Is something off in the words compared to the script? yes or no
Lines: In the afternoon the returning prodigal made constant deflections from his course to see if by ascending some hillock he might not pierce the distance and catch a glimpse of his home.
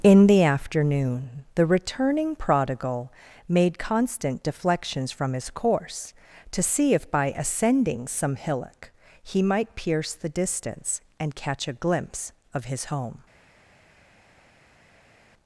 yes